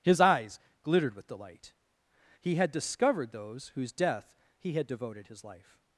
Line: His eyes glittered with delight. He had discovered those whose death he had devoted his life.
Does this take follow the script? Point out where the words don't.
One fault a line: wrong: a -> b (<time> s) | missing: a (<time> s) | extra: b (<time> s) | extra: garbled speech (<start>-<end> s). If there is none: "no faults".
no faults